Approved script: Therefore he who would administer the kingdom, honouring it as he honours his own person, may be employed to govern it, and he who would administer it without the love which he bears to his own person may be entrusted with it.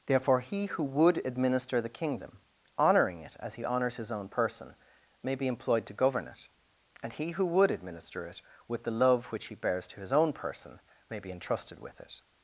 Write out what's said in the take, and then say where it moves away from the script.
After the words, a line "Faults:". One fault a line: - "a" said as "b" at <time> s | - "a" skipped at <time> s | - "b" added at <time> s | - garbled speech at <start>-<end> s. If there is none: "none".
Therefore he who would administer the kingdom, honouring it as he honours his own person, may be employed to govern it, and he who would administer it with the love which he bears to his own person may be entrusted with it.
Faults:
- "without" said as "with" at 8.7 s